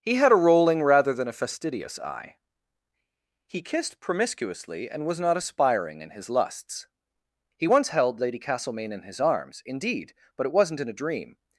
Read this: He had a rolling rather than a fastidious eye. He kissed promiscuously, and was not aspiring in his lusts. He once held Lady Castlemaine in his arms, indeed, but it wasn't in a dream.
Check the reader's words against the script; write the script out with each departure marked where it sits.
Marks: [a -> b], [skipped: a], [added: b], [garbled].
He had a rolling rather than a fastidious eye. He kissed promiscuously, and was not aspiring in his lusts. He once held Lady Castlemaine in his arms, indeed, but it wasn't in a dream.